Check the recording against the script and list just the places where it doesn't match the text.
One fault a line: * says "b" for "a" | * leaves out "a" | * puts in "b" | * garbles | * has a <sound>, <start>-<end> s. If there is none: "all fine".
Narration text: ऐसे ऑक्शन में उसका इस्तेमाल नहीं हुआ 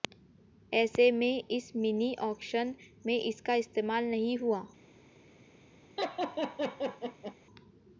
* puts in "में इस मिनी"
* says "इसका" for "उसका"
* has a laugh, 6.0-7.3 s